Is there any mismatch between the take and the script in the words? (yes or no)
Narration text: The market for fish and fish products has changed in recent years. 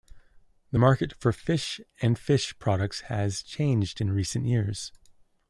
no